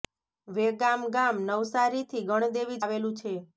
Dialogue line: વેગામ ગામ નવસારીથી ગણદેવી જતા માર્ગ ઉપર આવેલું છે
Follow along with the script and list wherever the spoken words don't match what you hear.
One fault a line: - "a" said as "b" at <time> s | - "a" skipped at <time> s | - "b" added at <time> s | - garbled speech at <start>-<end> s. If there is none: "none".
- "જતા માર્ગ ઉપર" skipped at 2.8 s